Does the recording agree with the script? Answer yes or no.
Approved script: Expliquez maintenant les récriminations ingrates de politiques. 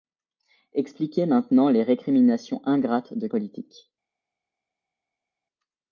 yes